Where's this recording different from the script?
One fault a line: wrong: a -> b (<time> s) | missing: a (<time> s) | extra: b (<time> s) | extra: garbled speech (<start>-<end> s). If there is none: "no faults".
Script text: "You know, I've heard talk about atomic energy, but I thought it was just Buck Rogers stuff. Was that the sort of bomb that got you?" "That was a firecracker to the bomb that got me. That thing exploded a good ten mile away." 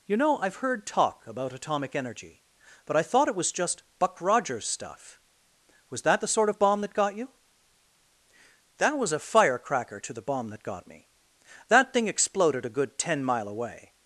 no faults